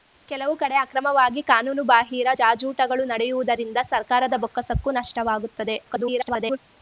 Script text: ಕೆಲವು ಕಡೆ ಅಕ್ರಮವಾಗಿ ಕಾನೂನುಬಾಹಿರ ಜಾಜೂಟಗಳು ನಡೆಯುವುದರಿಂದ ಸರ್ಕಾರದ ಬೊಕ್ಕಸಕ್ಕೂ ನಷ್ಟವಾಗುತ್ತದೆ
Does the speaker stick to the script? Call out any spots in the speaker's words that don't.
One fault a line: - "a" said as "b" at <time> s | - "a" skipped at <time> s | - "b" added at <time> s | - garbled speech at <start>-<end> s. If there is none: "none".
- garbled speech at 5.8-6.6 s